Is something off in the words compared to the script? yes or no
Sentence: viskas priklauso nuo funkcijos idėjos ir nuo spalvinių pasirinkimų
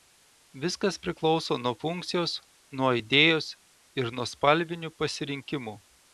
yes